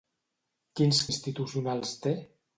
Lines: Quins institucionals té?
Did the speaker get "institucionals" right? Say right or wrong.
right